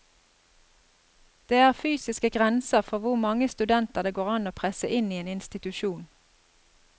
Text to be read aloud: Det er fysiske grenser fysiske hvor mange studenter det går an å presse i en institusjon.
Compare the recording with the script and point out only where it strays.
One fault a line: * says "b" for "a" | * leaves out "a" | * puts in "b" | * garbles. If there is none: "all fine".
* says "for" for "fysiske"
* puts in "inn"